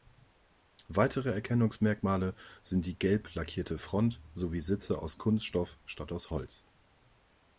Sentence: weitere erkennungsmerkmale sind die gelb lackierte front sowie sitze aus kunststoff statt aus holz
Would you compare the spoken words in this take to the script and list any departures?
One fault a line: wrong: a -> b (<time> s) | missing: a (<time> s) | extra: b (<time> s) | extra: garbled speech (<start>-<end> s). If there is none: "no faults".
no faults